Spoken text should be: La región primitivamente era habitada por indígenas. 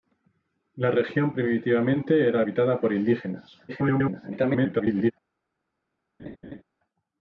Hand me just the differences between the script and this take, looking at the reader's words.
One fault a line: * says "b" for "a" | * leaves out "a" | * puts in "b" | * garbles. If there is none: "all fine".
* garbles